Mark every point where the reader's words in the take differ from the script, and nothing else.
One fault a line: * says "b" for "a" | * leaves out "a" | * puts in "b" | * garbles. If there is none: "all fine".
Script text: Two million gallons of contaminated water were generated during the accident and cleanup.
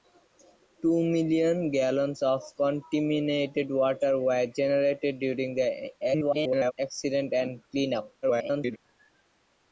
* garbles
* garbles